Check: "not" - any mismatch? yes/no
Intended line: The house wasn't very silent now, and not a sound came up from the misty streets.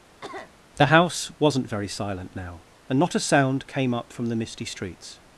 no